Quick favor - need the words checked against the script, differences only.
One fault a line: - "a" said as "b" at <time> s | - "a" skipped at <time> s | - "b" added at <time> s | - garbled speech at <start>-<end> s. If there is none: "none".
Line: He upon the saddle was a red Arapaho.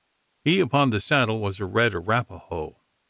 none